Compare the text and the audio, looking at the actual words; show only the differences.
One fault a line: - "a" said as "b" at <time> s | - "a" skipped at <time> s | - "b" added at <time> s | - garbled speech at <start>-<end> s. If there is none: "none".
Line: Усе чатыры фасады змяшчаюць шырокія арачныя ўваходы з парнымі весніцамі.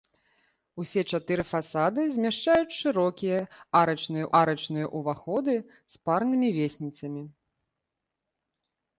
- "арачныя" added at 4.4 s